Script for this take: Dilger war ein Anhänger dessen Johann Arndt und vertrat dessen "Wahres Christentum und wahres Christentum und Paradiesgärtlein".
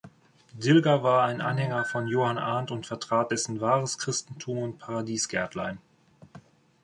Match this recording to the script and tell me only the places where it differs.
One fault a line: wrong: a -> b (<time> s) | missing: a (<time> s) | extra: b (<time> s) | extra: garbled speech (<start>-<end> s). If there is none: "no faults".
wrong: dessen -> von (1.9 s)
missing: wahres Christentum und (4.8 s)